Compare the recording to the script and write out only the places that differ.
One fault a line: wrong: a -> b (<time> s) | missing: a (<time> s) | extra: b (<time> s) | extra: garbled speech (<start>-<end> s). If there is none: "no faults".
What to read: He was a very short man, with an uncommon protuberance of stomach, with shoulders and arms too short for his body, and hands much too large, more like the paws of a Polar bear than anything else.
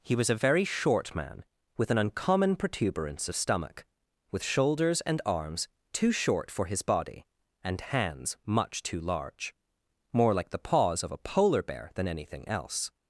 no faults